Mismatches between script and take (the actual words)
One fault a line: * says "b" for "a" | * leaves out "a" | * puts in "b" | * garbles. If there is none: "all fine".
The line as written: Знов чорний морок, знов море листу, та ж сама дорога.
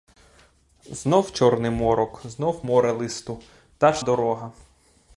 * leaves out "сама"